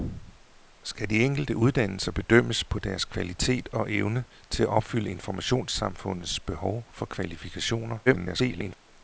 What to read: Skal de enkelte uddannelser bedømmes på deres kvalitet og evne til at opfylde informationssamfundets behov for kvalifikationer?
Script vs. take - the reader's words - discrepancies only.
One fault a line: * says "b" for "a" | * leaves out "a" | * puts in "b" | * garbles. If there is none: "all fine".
* garbles